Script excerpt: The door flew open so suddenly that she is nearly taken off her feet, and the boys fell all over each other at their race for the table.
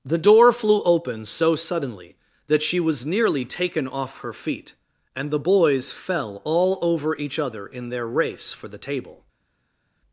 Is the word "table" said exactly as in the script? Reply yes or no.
yes